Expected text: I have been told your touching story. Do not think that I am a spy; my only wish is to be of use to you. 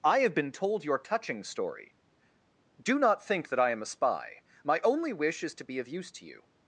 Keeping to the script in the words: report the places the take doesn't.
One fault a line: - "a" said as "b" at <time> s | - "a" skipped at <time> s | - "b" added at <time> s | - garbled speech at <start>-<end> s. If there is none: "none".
none